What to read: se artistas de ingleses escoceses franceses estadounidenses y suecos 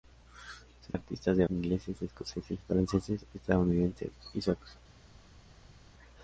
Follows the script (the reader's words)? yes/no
yes